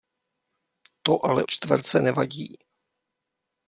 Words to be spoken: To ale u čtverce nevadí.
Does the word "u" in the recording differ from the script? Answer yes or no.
yes